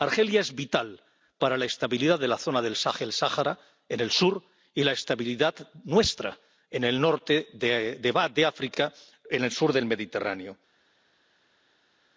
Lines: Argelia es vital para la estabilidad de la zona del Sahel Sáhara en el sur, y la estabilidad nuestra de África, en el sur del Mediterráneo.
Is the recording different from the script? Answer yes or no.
yes